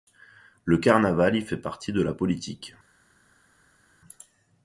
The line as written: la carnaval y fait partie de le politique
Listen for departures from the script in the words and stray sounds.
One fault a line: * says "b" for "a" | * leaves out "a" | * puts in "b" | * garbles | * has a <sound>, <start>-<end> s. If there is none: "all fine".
* says "le" for "la"
* says "la" for "le"